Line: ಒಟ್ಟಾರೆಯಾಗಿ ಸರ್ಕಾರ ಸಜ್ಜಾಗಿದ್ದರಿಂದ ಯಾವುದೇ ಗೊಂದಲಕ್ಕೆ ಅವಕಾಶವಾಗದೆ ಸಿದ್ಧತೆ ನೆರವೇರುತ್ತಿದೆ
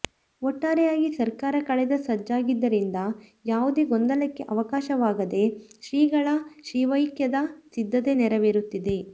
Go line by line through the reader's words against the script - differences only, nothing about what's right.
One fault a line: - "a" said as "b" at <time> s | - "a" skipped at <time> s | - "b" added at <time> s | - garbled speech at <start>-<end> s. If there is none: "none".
- "ಕಳೆದ" added at 1.7 s
- "ಶ್ರೀಗಳ ಶಿವೈಕ್ಯದ" added at 5.8 s